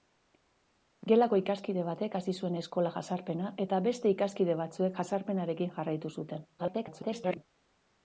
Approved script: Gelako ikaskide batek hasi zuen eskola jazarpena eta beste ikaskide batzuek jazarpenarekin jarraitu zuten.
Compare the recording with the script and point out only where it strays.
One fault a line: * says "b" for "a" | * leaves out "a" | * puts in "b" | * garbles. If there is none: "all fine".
* garbles